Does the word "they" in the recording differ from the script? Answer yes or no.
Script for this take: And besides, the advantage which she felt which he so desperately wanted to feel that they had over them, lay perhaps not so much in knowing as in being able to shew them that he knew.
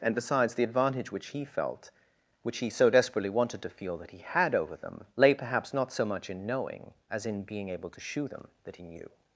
yes